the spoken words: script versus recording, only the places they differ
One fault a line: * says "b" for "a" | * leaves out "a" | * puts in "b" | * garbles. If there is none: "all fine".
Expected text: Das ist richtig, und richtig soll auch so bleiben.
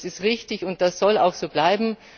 * says "das" for "richtig"